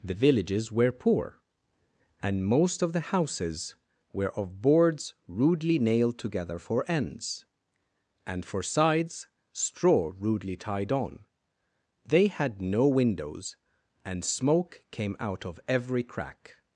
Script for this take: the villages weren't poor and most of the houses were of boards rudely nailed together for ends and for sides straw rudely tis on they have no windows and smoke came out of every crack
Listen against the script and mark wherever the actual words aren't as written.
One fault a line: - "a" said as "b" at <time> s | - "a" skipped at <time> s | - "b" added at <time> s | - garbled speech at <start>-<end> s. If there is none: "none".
- "weren't" said as "were" at 0.7 s
- "tis" said as "tied" at 10.6 s
- "have" said as "had" at 12.2 s